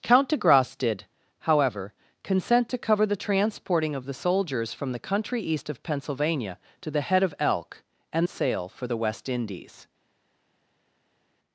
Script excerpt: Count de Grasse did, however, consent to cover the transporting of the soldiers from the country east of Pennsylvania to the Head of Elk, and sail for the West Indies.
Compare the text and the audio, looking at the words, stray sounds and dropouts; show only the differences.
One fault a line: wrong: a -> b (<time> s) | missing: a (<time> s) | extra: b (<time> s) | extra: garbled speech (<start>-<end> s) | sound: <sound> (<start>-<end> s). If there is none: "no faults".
no faults